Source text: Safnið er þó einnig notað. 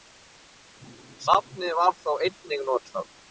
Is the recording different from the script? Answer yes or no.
yes